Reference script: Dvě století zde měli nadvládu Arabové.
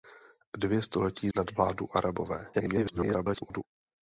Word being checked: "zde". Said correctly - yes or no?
no